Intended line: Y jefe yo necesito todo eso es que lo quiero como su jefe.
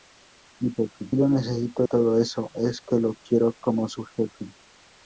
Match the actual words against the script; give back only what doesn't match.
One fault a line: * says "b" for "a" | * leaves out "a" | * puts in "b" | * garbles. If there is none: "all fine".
all fine